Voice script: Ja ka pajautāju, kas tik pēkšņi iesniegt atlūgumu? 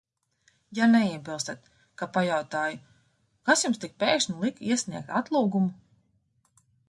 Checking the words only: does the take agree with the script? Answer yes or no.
no